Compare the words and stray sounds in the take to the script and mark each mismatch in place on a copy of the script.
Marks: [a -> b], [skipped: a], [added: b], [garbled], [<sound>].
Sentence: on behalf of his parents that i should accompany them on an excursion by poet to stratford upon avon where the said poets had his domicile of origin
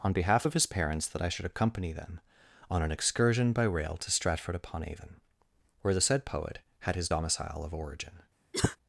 on behalf of his parents that i should accompany them on an excursion by [poet -> rail] to stratford upon avon where the said [poets -> poet] had his domicile of origin [cough]